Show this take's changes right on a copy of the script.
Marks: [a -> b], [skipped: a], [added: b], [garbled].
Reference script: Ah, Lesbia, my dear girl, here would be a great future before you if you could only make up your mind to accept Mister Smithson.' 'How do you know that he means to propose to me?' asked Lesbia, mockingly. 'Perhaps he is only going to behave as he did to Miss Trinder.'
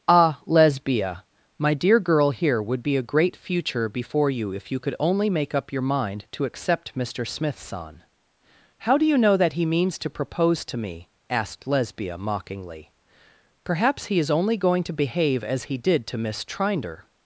Ah, Lesbia, my dear girl, here would be a great future before you if you could only make up your mind to accept Mister Smithson.' 'How do you know that he means to propose to me?' asked Lesbia, mockingly. 'Perhaps he is only going to behave as he did to Miss Trinder.'